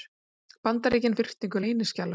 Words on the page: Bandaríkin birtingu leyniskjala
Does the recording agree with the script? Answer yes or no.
yes